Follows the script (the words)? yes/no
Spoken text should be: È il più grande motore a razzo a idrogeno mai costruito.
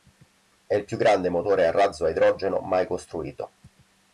yes